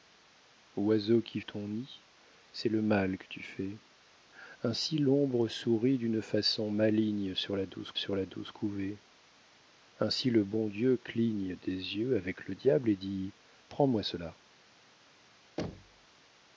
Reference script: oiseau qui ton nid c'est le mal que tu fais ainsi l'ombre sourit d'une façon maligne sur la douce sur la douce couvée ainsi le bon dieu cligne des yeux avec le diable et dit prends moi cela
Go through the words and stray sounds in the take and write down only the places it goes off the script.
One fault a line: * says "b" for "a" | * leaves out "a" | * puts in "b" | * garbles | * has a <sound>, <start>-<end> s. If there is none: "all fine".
* has a thud, 15.6-16.1 s